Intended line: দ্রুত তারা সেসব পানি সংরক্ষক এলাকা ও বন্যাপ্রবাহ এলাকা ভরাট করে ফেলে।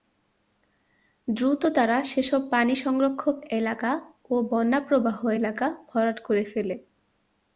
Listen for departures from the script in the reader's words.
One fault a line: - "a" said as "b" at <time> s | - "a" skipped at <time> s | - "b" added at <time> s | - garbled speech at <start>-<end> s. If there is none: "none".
none